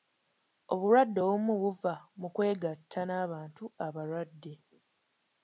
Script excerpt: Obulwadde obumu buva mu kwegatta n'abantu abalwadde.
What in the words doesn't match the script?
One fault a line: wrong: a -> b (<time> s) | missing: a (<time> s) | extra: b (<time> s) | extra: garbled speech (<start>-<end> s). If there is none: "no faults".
no faults